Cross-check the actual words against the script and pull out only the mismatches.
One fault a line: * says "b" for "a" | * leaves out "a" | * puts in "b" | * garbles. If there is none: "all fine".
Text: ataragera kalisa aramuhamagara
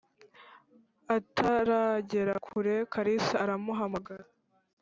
* puts in "kure"